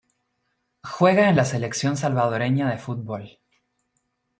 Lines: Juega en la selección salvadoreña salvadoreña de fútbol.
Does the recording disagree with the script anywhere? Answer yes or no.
yes